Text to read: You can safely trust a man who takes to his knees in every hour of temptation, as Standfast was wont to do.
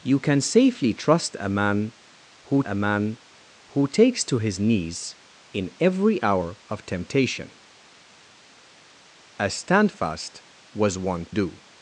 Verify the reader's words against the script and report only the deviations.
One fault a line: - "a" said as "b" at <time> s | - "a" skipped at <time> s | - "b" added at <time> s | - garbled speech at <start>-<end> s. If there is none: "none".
- "a man who" added at 2.6 s
- "to" skipped at 11.3 s